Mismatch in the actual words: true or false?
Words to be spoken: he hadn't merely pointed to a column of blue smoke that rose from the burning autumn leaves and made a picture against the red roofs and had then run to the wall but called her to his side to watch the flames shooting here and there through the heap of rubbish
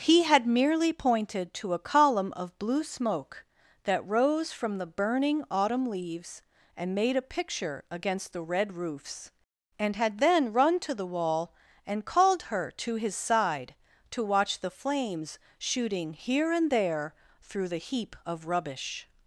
true